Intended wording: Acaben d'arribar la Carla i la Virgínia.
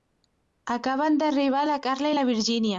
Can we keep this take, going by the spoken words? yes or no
yes